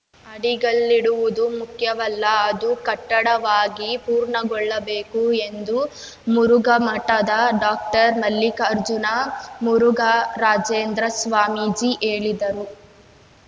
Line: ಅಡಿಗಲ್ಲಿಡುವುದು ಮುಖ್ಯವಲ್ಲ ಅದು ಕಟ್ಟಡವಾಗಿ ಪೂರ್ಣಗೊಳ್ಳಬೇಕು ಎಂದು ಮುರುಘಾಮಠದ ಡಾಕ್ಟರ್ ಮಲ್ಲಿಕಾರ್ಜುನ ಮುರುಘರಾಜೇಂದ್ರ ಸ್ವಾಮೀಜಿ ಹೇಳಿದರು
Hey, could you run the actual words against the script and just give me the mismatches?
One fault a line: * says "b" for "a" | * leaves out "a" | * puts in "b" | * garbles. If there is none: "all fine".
all fine